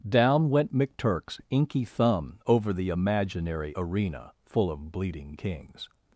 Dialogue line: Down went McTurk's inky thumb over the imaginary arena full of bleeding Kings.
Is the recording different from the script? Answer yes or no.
no